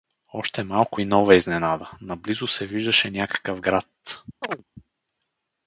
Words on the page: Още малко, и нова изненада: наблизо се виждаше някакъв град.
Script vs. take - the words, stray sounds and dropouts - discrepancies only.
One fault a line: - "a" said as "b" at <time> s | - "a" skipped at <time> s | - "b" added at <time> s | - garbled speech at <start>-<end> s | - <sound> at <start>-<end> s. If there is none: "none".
- chirp at 4.4-4.6 s